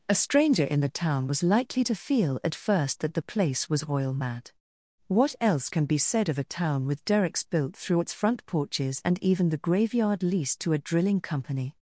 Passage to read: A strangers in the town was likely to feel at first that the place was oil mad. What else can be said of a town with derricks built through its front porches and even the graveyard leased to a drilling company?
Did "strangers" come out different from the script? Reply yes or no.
yes